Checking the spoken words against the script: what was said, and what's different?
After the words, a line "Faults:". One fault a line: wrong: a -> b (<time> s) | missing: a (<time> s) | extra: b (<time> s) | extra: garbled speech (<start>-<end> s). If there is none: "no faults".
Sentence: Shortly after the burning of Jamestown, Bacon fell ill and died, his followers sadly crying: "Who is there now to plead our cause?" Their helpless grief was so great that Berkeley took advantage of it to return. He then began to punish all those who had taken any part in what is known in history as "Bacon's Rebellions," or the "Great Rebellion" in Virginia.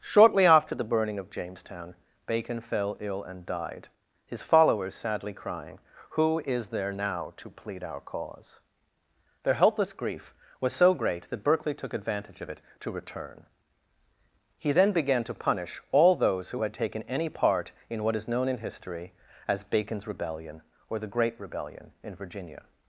Shortly after the burning of Jamestown, Bacon fell ill and died, his followers sadly crying: "Who is there now to plead our cause?" Their helpless grief was so great that Berkeley took advantage of it to return. He then began to punish all those who had taken any part in what is known in history as "Bacon's Rebellion," or the "Great Rebellion" in Virginia.
Faults:
wrong: Rebellions -> Rebellion (20.1 s)